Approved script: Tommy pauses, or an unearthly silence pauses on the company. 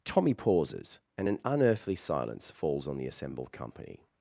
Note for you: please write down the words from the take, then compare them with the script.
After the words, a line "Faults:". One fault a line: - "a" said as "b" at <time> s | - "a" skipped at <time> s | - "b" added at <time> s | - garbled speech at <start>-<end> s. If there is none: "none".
Tommy pauses, and an unearthly silence falls on the assembled company.
Faults:
- "or" said as "and" at 1.2 s
- "pauses" said as "falls" at 2.5 s
- "assembled" added at 3.1 s